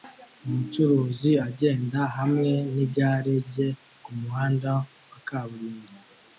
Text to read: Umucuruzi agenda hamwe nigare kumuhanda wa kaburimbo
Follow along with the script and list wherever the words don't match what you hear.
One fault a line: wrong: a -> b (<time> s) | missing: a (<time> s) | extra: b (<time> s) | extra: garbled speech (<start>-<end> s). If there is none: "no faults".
extra: rye (3.5 s)